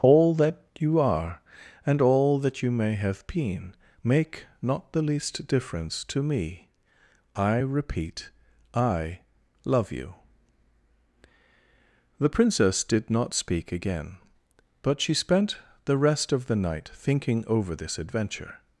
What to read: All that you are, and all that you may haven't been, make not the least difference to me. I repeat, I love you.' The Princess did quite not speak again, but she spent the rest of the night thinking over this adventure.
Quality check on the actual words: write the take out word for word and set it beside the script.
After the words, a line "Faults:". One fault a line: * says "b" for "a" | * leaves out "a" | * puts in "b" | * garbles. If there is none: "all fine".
All that you are, and all that you may have been, make not the least difference to me. I repeat, I love you.' The Princess did not speak again, but she spent the rest of the night thinking over this adventure.
Faults:
* says "have" for "haven't"
* leaves out "quite"